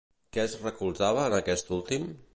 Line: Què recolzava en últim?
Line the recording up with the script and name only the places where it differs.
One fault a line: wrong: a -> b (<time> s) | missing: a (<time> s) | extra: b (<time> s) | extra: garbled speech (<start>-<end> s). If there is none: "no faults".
extra: es (0.4 s)
extra: aquest (1.4 s)